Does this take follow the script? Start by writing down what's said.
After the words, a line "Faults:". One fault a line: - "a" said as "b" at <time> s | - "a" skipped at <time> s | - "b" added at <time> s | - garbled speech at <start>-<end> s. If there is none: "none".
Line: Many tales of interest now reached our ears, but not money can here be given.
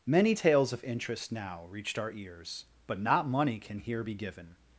Many tales of interest now reached our ears, but not money can here be given.
Faults:
none